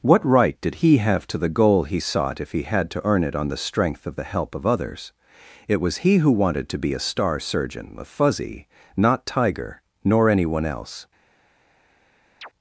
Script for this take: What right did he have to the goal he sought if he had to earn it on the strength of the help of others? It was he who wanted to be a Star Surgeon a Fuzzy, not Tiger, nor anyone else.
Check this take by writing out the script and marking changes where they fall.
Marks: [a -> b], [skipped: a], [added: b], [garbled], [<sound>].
What right did he have to the goal he sought if he had to earn it on the strength of the help of others? It was he who wanted to be a Star Surgeon a Fuzzy, not Tiger, nor anyone else. [chirp]